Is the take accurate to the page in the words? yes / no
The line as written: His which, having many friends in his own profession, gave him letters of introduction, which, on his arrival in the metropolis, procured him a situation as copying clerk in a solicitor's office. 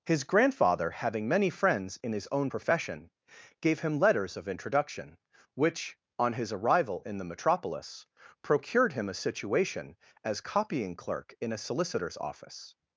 no